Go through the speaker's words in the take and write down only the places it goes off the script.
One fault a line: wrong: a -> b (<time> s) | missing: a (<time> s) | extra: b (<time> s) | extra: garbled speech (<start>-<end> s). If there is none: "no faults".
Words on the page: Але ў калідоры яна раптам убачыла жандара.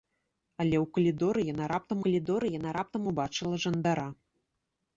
extra: калідоры яна раптам (2.1 s)